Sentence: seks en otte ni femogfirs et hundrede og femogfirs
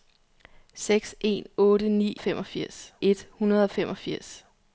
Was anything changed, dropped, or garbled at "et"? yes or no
no